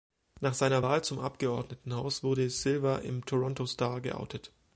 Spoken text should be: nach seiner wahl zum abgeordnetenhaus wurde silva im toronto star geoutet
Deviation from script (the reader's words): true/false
false